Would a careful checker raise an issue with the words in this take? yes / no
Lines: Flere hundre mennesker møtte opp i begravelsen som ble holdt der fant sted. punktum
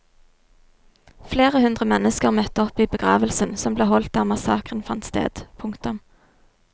yes